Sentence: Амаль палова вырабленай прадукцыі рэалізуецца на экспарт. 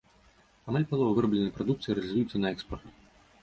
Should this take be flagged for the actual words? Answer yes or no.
no